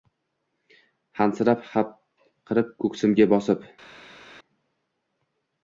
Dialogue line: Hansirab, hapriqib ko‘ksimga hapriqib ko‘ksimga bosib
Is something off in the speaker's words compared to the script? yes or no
yes